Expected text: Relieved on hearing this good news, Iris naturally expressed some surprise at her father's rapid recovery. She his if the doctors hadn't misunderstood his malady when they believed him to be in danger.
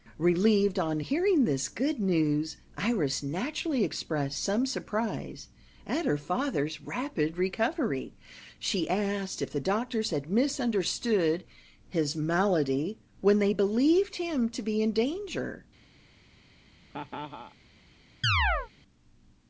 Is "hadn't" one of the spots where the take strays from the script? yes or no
yes